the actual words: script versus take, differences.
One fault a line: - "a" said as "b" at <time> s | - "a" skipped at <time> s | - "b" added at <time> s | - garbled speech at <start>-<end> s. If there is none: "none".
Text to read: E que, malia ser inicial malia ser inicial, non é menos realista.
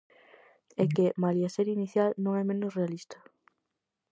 - "malia ser inicial" skipped at 2.1 s